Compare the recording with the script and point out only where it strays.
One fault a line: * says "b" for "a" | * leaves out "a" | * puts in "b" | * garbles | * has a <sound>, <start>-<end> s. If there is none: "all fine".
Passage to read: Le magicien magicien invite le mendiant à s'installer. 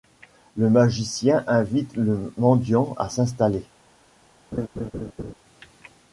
* leaves out "magicien"
* has a laugh, 4.5-5.3 s